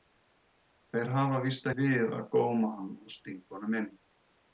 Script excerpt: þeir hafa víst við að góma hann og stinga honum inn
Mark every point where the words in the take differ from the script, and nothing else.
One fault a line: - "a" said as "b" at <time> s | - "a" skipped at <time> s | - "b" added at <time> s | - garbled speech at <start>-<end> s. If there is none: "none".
none